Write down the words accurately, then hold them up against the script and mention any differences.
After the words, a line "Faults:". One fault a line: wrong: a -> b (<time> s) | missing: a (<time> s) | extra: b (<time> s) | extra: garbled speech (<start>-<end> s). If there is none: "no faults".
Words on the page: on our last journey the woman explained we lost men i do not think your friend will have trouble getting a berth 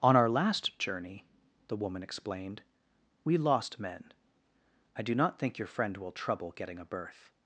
on our last journey the woman explained we lost men i do not think your friend will trouble getting a berth
Faults:
missing: have (6.1 s)